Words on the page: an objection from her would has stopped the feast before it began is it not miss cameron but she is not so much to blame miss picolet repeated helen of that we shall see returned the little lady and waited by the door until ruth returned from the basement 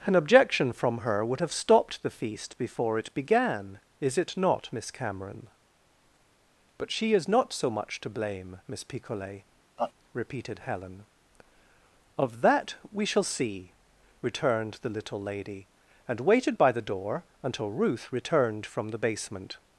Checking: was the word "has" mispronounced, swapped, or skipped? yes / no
yes